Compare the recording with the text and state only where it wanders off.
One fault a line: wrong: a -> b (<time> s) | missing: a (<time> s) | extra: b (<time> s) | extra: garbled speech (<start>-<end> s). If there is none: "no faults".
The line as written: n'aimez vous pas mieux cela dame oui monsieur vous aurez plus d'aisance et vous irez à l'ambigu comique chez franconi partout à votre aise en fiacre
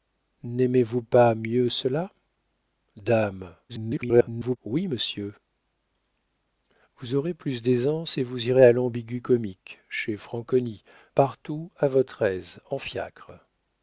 extra: garbled speech (3.7-4.6 s)